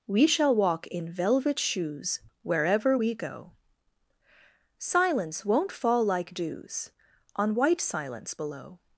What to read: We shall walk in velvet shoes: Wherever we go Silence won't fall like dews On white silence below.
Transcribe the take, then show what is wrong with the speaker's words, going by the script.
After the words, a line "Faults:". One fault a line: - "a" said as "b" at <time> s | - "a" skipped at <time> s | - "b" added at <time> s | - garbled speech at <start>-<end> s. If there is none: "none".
We shall walk in velvet shoes: Wherever we go Silence won't fall like dews On white silence below.
Faults:
none